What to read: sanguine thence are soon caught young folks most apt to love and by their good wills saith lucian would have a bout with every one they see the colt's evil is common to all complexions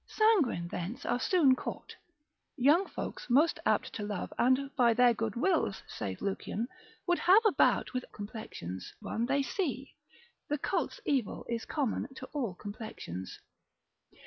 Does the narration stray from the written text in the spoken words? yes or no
yes